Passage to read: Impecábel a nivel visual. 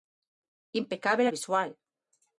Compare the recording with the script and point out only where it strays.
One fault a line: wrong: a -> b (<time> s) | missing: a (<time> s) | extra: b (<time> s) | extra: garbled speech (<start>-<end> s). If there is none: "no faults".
missing: nivel (1.3 s)